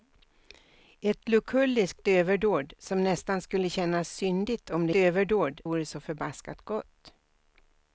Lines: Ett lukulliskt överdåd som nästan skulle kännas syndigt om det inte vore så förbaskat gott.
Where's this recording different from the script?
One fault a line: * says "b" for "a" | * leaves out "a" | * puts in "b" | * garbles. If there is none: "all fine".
* says "överdåd" for "inte"